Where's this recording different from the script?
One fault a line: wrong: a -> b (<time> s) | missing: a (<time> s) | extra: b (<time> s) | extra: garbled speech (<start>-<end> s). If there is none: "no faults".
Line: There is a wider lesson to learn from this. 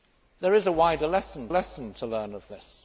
extra: lesson (1.5 s)
missing: from (2.4 s)